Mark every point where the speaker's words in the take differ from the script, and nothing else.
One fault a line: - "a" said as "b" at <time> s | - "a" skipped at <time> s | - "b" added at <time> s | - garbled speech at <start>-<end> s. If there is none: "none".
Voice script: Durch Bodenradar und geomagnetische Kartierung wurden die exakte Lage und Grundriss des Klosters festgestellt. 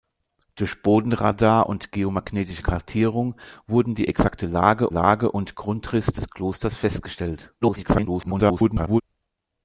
- "Lage" added at 4.9 s
- garbled speech at 7.6-9.0 s